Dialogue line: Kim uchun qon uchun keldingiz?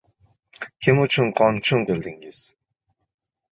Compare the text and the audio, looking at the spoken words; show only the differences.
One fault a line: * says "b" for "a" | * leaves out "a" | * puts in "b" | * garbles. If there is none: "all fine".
all fine